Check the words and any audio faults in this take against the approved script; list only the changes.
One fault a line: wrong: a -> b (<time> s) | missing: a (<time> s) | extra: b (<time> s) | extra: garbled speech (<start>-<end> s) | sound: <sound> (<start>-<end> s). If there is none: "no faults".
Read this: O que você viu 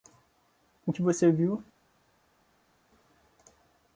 no faults